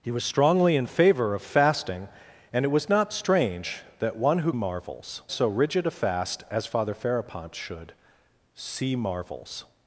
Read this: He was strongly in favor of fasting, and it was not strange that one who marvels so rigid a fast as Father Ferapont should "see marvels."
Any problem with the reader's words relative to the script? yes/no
no